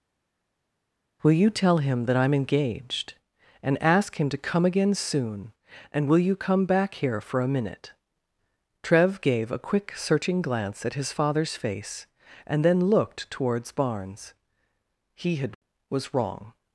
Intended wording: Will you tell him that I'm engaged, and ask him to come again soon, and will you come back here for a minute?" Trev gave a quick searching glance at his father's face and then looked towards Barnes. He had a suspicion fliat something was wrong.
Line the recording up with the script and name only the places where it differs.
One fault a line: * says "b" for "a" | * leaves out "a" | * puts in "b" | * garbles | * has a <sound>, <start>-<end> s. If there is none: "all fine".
* leaves out "a suspicion fliat something"